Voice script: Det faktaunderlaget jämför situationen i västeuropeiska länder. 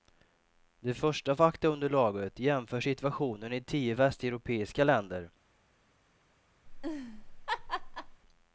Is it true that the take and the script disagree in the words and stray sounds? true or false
true